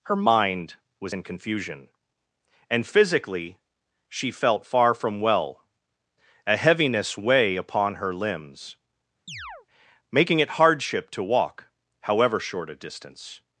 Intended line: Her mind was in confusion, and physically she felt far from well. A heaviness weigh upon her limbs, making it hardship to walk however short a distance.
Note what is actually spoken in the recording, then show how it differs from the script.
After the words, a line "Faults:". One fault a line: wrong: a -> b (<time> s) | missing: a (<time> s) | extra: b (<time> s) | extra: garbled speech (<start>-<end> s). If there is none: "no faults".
Her mind was in confusion, and physically she felt far from well. A heaviness weigh upon her limbs, making it hardship to walk however short a distance.
Faults:
no faults